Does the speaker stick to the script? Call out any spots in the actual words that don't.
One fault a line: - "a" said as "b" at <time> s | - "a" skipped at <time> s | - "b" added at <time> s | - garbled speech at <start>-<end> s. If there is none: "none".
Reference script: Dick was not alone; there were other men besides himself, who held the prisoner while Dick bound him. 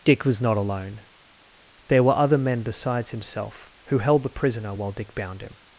none